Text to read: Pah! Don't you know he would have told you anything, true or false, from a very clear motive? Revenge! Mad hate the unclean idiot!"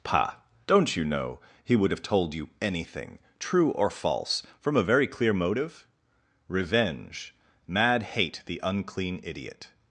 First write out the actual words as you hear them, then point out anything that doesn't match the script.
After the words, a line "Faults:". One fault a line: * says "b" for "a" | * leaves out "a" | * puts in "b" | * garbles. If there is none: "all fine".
Pah! Don't you know he would have told you anything, true or false, from a very clear motive? Revenge! Mad hate the unclean idiot!"
Faults:
all fine